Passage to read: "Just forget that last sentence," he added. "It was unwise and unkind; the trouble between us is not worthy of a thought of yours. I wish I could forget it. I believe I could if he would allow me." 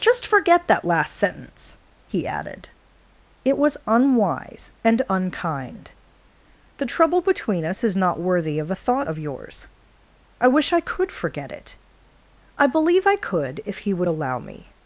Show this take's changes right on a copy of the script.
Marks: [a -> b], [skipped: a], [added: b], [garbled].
"Just forget that last sentence," he added. "It was unwise and unkind; the trouble between us is not worthy of a thought of yours. I wish I could forget it. I believe I could if he would allow me."